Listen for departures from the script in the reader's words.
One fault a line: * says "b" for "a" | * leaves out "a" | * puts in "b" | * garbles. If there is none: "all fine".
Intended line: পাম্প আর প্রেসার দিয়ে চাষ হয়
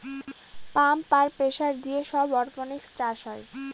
* puts in "সব অরপনিক্স"